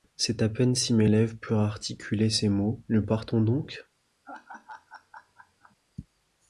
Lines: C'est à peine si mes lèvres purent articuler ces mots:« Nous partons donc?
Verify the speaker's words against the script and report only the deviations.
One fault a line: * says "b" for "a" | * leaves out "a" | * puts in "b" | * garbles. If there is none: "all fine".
all fine